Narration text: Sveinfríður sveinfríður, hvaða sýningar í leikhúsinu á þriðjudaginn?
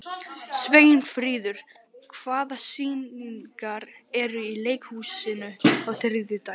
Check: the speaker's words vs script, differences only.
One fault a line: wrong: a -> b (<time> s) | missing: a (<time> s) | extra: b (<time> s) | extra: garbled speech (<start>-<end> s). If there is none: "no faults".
missing: sveinfríður (1.6 s)
extra: eru (4.2 s)